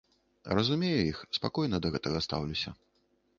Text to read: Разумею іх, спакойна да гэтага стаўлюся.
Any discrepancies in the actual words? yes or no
no